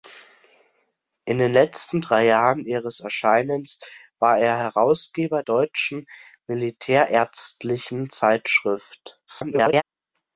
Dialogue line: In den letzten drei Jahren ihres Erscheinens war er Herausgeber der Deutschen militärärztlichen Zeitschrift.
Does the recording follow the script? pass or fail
fail